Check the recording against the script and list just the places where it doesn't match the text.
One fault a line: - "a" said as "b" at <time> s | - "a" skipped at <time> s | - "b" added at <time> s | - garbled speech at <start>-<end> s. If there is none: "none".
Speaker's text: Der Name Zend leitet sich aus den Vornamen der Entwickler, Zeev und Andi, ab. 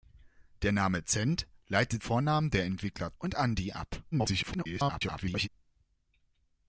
- "sich aus den" skipped at 2.0 s
- "Zeev" skipped at 3.1 s
- garbled speech at 4.1-5.5 s